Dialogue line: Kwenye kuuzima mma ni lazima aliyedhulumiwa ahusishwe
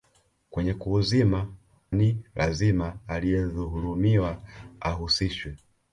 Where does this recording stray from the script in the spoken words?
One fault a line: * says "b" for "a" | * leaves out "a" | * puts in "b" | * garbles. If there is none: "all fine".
* leaves out "mma"